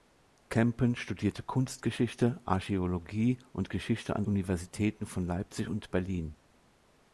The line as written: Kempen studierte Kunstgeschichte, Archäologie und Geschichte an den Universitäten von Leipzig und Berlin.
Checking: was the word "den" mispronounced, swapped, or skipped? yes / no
yes